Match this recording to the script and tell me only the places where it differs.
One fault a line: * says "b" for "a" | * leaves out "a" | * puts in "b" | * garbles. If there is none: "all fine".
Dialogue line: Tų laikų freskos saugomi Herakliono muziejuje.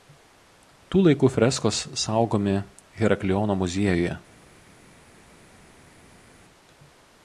all fine